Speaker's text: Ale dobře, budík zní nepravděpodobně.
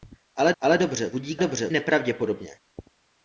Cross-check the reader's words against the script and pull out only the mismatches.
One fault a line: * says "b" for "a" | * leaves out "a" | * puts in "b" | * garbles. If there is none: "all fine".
* puts in "ale"
* says "dobře" for "zní"